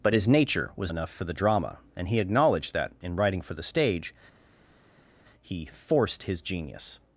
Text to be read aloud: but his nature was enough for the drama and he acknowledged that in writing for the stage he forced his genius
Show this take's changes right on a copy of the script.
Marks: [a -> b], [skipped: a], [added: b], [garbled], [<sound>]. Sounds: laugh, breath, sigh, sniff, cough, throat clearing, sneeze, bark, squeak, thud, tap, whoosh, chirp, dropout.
but his nature was enough for the drama and he acknowledged that in writing for the stage he forced his genius